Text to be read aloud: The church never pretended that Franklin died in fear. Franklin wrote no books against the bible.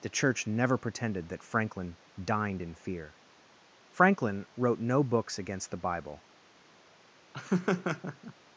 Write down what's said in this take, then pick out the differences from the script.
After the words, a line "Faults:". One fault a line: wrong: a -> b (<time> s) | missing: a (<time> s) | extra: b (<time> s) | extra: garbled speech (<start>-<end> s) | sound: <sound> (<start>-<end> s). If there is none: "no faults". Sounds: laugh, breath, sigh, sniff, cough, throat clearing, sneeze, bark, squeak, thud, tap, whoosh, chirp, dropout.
The church never pretended that Franklin dined in fear. Franklin wrote no books against the bible.
Faults:
wrong: died -> dined (2.2 s)
sound: laugh (7.3-8.3 s)